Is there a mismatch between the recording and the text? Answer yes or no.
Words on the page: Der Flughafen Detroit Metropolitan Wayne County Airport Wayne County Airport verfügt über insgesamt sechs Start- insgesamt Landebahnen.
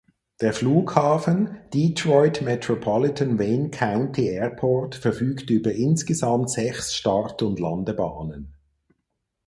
yes